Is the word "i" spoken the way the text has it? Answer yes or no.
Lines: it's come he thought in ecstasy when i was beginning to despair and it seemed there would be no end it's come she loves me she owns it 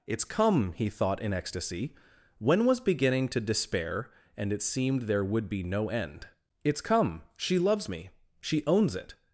no